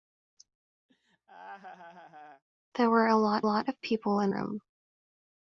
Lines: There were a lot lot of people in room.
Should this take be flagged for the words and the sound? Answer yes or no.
yes